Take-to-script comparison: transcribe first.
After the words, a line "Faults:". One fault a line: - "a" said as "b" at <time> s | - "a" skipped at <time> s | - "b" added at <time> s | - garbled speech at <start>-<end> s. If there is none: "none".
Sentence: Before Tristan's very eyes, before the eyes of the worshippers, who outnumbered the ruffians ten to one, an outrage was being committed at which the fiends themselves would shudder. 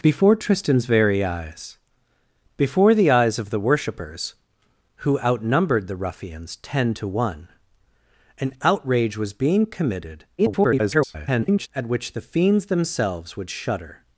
Before Tristan's very eyes, before the eyes of the worshippers, who outnumbered the ruffians ten to one, an outrage was being committed [garbled] at which the fiends themselves would shudder.
Faults:
- garbled speech at 10.4-11.7 s